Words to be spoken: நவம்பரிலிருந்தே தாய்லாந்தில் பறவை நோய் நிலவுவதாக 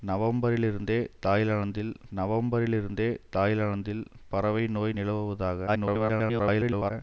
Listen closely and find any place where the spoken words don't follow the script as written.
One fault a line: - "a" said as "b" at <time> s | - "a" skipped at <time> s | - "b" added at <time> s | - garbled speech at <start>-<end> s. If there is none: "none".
- "நவம்பரிலிருந்தே தாய்லாந்தில்" added at 2.1 s
- garbled speech at 5.7-6.9 s